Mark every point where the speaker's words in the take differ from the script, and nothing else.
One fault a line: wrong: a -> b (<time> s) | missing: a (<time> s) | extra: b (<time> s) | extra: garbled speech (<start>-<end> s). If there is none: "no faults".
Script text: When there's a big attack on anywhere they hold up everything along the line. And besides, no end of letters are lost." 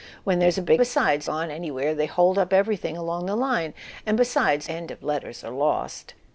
wrong: attack -> besides (0.8 s)
missing: no (4.7 s)